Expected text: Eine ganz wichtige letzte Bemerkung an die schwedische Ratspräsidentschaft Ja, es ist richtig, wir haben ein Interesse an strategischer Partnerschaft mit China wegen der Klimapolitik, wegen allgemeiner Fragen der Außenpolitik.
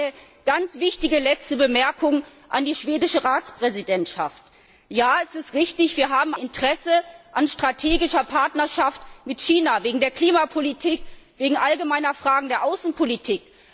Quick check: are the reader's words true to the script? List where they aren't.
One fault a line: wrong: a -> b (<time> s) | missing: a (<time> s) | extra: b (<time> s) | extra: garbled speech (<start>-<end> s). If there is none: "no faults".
missing: ein (6.3 s)